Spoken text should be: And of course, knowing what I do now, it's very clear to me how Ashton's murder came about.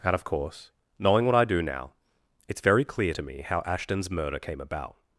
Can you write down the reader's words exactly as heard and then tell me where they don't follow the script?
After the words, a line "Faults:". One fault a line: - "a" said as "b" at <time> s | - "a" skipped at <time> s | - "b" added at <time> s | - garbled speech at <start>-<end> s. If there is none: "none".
And of course, knowing what I do now, it's very clear to me how Ashton's murder came about.
Faults:
none